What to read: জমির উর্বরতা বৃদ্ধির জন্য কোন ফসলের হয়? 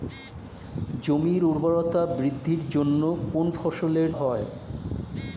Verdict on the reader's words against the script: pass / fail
pass